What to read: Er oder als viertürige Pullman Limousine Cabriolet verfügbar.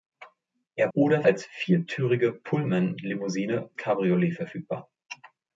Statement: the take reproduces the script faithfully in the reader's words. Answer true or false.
true